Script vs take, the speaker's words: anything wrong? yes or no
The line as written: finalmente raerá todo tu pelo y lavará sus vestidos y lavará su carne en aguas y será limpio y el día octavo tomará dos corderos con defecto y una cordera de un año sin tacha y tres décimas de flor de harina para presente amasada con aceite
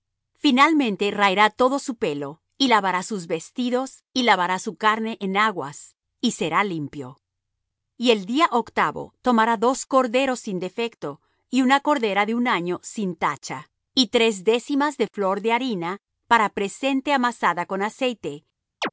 yes